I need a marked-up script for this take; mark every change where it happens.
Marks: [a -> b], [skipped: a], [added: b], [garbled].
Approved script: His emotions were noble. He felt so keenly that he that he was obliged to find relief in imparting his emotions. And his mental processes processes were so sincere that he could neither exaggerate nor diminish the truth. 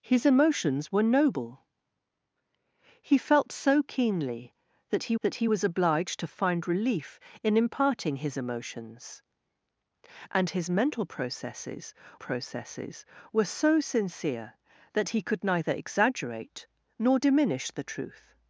His emotions were noble. He felt so keenly that he that he was obliged to find relief in imparting his emotions. And his mental processes processes were so sincere that he could neither exaggerate nor diminish the truth.